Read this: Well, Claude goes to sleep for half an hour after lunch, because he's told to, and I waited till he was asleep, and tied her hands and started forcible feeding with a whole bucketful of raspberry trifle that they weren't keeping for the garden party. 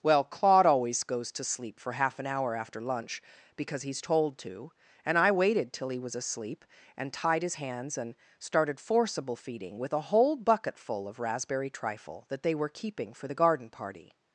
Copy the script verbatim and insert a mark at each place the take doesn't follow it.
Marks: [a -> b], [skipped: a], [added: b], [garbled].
Well, Claude [added: always] goes to sleep for half an hour after lunch, because he's told to, and I waited till he was asleep, and tied [her -> his] hands and started forcible feeding with a whole bucketful of raspberry trifle that they [weren't -> were] keeping for the garden party.